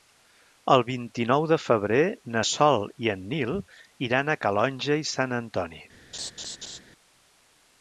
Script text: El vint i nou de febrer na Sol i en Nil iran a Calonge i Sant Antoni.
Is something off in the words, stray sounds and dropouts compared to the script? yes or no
yes